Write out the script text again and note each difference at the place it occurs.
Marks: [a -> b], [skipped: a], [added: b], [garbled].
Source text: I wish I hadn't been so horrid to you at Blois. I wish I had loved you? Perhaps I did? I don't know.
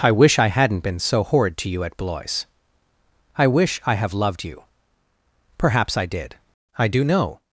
I wish I hadn't been so horrid to you at Blois. I wish I [had -> have] loved you? Perhaps I did? I [don't -> do] know.